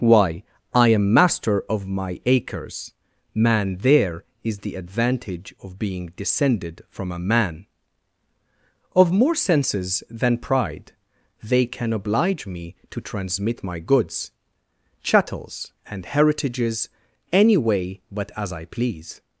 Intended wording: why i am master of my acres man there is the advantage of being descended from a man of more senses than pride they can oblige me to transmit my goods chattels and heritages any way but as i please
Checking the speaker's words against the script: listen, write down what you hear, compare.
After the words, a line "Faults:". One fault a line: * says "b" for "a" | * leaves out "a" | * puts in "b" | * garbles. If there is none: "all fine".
why i am master of my acres man there is the advantage of being descended from a man of more senses than pride they can oblige me to transmit my goods chattels and heritages any way but as i please
Faults:
all fine